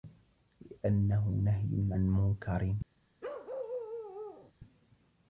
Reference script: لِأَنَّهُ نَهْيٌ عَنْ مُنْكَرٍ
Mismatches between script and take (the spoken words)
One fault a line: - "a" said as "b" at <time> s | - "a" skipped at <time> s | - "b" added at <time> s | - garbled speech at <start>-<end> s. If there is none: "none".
none